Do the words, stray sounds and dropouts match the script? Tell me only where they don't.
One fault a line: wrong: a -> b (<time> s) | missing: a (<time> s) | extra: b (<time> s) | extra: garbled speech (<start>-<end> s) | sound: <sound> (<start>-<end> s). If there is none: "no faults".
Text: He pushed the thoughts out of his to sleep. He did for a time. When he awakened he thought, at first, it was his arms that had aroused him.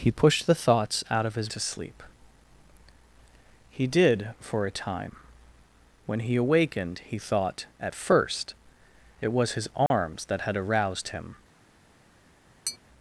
sound: dropout (9.9-9.9 s)
sound: tap (12.7-12.8 s)